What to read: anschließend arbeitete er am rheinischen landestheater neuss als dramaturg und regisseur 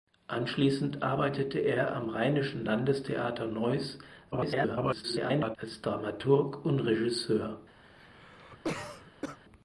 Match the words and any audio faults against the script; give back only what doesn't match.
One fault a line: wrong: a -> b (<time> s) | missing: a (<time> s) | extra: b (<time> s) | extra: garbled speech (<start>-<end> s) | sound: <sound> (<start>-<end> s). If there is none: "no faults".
extra: garbled speech (4.3-5.6 s)
sound: cough (7.8-9.4 s)